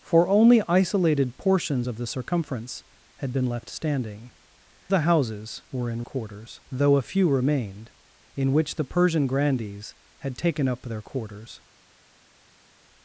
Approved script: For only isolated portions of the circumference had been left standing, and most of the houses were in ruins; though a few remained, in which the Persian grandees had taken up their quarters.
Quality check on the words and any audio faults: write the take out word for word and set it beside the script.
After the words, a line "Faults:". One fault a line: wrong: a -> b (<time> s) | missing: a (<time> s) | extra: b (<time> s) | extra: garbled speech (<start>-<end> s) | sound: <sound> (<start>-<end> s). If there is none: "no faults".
For only isolated portions of the circumference had been left standing, the houses were in quarters; though a few remained, in which the Persian grandees had taken up their quarters.
Faults:
missing: and most of (4.3 s)
wrong: ruins -> quarters (6.0 s)